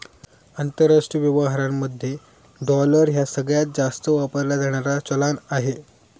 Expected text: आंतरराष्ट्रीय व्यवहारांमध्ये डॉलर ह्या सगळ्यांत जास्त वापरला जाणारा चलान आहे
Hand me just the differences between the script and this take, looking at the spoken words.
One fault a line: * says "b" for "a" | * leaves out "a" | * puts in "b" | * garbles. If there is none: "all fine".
all fine